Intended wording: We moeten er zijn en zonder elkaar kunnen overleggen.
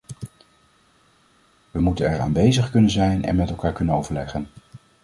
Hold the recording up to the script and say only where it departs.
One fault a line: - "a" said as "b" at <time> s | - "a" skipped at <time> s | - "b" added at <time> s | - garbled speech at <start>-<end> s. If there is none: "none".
- "aanwezig kunnen" added at 2.2 s
- "zonder" said as "met" at 3.3 s